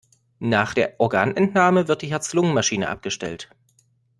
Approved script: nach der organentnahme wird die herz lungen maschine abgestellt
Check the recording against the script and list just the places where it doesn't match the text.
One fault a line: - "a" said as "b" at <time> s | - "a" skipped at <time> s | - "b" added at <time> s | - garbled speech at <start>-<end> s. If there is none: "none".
none